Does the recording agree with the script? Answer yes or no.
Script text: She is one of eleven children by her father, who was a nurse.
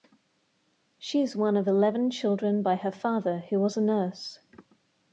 yes